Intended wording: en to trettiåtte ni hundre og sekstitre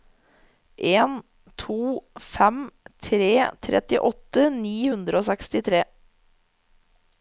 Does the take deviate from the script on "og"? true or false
false